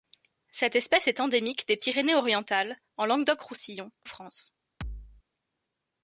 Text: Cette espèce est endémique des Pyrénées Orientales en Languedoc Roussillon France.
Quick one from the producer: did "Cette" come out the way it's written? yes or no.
yes